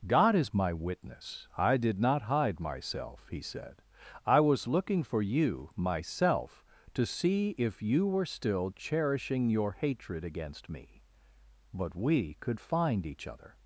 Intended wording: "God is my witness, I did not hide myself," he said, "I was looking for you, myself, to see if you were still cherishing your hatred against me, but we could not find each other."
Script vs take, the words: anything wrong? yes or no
yes